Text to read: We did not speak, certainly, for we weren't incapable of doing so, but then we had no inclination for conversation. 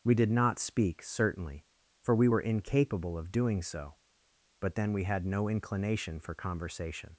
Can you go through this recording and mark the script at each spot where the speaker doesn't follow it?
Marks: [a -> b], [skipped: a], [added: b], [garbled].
We did not speak, certainly, for we [weren't -> were] incapable of doing so, but then we had no inclination for conversation.